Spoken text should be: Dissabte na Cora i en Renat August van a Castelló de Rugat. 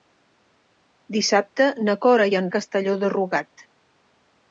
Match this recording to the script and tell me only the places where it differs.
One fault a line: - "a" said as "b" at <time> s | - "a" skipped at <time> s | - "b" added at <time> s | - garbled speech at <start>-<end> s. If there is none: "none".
- "Renat August van" skipped at 2.5 s